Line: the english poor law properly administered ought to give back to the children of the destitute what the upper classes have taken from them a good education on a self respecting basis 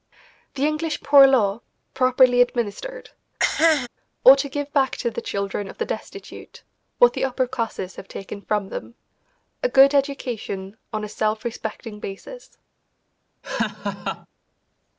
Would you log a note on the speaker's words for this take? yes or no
no